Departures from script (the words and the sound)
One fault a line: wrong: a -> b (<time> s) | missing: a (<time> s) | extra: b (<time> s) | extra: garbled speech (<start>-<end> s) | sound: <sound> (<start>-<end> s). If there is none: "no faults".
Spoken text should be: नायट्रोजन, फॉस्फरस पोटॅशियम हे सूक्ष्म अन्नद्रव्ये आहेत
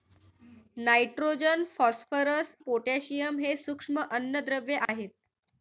sound: dropout (4.9-4.9 s)